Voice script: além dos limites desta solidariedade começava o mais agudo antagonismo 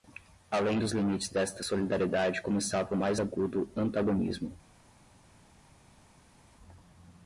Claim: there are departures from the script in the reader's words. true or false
false